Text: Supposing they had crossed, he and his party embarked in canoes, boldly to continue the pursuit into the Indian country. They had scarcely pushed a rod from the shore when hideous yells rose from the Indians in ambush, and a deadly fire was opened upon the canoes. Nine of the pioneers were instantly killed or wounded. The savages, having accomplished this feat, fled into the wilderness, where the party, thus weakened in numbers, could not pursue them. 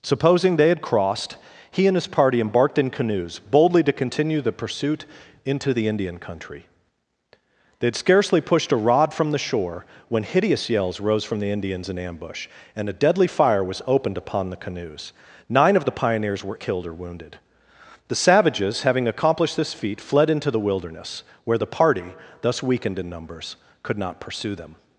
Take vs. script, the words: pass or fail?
fail